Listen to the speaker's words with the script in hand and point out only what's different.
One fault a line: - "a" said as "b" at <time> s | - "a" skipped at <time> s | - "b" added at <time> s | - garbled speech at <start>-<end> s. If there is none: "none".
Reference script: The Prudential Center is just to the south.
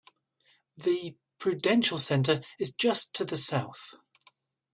none